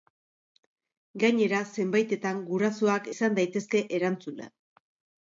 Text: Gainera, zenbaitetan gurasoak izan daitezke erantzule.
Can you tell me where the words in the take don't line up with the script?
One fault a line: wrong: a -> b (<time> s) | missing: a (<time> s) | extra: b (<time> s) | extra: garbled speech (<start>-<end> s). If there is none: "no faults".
no faults